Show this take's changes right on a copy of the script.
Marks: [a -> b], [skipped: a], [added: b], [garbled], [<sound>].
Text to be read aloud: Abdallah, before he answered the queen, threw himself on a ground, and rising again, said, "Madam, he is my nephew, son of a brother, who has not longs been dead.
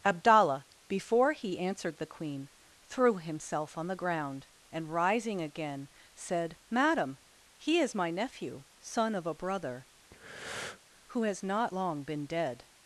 Abdallah, before he answered the queen, threw himself on [a -> the] ground, and rising again, said, "Madam, he is my nephew, son of a brother, [breath] who has not [longs -> long] been dead.